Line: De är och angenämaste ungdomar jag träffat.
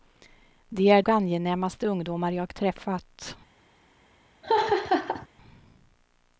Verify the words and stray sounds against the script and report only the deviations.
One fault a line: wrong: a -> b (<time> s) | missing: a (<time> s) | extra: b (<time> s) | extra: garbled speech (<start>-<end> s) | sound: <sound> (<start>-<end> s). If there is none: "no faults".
sound: laugh (4.4-5.3 s)